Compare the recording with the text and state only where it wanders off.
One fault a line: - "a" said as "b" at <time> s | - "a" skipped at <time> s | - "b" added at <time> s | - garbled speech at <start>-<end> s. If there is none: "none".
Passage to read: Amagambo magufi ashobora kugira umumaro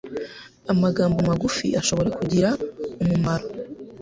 none